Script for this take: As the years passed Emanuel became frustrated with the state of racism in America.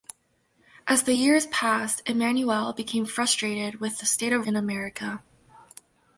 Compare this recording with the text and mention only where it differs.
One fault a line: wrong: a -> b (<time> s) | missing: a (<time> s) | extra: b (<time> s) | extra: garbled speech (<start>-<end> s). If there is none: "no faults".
missing: racism (4.4 s)